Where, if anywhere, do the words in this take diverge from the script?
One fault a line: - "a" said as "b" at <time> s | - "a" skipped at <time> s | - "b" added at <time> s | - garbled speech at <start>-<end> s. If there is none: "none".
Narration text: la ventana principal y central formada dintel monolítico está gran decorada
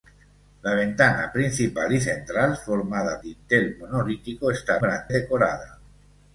none